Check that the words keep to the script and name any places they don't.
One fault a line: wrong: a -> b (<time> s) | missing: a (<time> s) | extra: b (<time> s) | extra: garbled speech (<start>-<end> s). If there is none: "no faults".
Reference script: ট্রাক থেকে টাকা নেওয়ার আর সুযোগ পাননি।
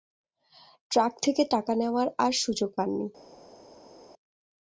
no faults